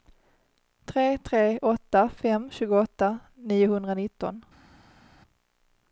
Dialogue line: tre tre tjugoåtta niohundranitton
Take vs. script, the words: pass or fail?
fail